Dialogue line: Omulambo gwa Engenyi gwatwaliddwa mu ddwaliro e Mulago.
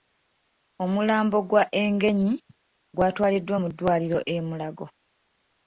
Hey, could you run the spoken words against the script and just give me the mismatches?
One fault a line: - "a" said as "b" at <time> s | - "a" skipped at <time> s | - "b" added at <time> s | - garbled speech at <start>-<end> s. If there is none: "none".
none